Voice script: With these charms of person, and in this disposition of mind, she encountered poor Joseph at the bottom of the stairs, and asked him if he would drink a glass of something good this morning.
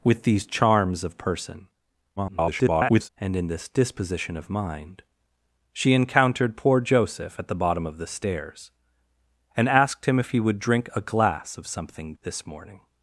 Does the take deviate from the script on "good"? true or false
true